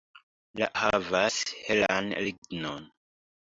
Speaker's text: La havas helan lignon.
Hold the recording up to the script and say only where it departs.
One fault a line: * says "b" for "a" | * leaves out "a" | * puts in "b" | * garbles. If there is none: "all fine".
all fine